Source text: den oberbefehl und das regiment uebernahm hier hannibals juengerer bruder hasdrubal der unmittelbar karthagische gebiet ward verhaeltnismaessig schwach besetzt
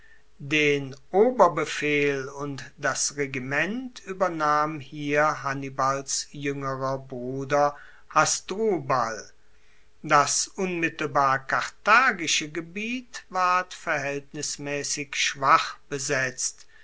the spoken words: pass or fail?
fail